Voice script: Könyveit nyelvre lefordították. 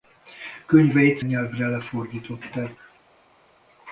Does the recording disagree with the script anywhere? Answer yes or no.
no